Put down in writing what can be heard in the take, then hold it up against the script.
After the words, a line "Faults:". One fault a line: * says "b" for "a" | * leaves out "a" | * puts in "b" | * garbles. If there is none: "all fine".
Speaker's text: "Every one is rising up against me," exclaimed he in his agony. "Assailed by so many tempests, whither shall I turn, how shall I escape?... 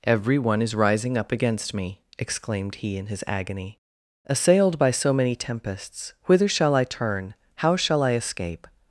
"Every one is rising up against me," exclaimed he in his agony. "Assailed by so many tempests, whither shall I turn, how shall I escape?...
Faults:
all fine